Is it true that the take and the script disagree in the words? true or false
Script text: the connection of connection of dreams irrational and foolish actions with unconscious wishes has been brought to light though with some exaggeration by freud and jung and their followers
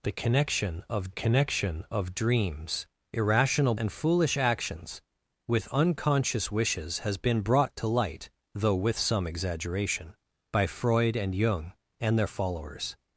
false